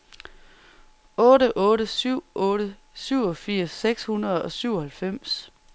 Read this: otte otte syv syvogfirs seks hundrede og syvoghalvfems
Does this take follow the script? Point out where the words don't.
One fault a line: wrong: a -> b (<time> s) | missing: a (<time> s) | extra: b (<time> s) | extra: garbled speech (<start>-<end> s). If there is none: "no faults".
extra: otte (2.5 s)